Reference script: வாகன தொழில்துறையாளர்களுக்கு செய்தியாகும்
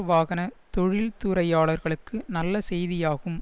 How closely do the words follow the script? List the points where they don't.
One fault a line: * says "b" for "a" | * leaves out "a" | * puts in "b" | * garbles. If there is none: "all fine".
* puts in "நல்ல"